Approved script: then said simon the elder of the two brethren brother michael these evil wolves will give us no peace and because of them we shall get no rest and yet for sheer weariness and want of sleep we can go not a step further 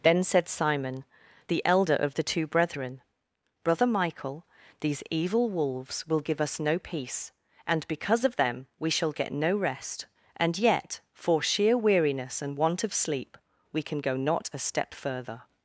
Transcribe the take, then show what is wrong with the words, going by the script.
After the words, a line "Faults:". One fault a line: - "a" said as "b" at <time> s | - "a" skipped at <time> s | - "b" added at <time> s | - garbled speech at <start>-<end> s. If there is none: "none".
then said simon the elder of the two brethren brother michael these evil wolves will give us no peace and because of them we shall get no rest and yet for sheer weariness and want of sleep we can go not a step further
Faults:
none